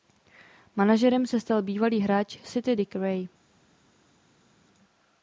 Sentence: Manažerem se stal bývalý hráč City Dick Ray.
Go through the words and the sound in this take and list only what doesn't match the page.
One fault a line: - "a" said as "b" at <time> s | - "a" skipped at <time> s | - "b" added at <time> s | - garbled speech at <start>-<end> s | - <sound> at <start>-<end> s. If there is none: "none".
none